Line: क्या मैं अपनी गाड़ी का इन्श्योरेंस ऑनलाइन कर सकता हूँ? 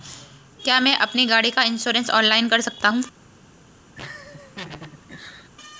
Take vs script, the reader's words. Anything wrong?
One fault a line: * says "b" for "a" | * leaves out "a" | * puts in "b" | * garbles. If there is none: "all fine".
all fine